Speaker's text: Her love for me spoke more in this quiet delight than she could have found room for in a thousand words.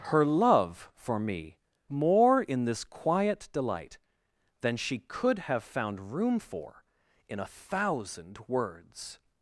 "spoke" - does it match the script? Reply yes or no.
no